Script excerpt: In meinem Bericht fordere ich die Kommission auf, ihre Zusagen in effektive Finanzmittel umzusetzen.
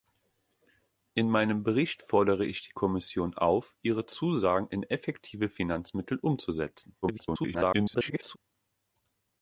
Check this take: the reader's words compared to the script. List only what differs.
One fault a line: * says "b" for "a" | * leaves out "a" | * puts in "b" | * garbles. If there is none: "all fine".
* garbles